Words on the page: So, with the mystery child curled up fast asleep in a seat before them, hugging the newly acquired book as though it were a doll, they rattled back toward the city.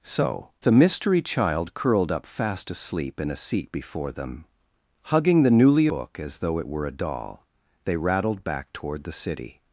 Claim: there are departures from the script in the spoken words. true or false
true